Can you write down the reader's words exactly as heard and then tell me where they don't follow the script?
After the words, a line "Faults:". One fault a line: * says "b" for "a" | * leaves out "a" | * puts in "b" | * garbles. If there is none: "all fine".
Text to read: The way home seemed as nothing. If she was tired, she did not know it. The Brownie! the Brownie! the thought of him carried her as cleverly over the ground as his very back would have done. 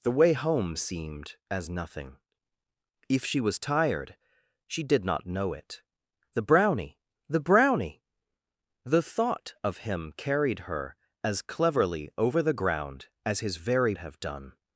The way home seemed as nothing. If she was tired, she did not know it. The Brownie! the Brownie! the thought of him carried her as cleverly over the ground as his very have done.
Faults:
* leaves out "back would"